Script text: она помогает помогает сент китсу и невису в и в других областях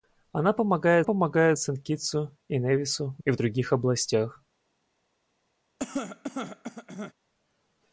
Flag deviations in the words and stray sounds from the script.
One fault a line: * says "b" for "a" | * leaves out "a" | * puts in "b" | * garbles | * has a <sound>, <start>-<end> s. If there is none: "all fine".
* has a cough, 5.8-7.1 s